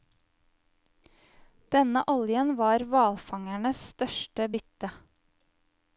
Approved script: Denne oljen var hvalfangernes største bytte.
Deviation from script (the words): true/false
false